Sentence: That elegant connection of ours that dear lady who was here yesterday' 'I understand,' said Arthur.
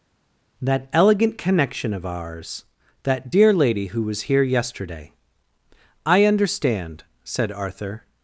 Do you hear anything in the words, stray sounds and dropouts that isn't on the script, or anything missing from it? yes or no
no